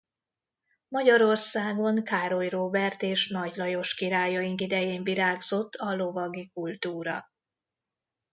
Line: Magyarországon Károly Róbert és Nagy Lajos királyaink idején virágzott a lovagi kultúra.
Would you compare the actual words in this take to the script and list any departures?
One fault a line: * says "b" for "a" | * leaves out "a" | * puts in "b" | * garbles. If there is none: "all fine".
all fine